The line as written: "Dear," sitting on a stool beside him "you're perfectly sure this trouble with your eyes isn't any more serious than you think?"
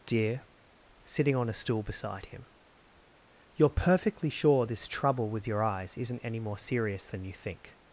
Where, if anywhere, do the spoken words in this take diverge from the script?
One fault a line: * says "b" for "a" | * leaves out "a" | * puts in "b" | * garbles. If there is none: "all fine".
all fine